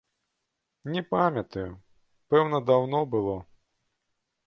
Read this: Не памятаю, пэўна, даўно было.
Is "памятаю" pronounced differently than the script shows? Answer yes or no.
no